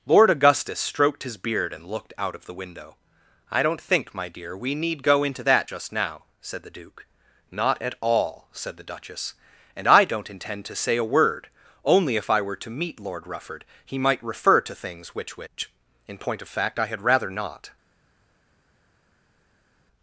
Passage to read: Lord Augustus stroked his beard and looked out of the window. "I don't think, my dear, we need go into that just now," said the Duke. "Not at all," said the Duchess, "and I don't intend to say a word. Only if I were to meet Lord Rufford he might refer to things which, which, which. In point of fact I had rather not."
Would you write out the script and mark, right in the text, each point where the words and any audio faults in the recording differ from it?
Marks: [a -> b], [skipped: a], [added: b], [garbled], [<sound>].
Lord Augustus stroked his beard and looked out of the window. "I don't think, my dear, we need go into that just now," said the Duke. "Not at all," said the Duchess, "and I don't intend to say a word. Only if I were to meet Lord Rufford he might refer to things which, which, [skipped: which.] In point of fact I had rather not."